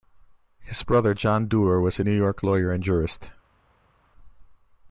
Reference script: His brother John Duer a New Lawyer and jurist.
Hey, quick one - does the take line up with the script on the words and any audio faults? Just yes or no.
no